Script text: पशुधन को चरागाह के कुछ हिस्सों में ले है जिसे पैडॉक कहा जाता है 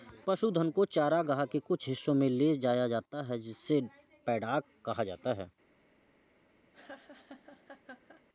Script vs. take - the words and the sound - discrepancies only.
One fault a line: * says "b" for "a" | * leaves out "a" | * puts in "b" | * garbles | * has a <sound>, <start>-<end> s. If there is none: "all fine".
* puts in "जाया जाता"
* has a laugh, 6.7-8.2 s